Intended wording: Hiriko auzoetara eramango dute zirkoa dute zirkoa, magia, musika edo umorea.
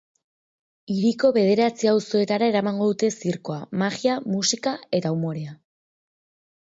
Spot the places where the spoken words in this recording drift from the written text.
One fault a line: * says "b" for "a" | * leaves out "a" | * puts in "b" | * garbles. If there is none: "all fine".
* puts in "bederatzi"
* leaves out "dute zirkoa"
* says "eta" for "edo"